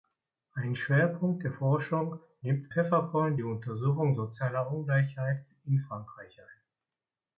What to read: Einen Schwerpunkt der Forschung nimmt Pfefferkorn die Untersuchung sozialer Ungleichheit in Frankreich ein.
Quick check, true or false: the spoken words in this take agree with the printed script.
true